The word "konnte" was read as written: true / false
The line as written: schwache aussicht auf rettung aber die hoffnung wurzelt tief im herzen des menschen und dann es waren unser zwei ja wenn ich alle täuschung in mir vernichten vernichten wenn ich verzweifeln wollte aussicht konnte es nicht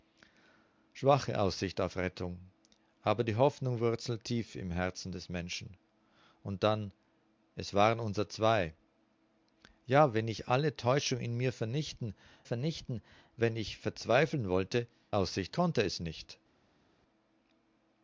true